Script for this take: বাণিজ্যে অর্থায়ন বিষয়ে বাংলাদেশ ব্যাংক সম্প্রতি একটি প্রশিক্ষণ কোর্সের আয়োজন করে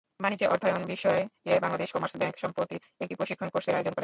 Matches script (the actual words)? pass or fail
fail